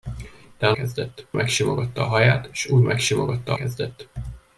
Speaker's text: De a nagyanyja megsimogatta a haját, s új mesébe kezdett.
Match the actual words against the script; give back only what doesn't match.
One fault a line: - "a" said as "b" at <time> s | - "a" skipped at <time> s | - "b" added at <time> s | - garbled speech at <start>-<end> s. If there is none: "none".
- "nagyanyja" said as "kezdett" at 0.7 s
- "mesébe" said as "megsimogatta" at 2.8 s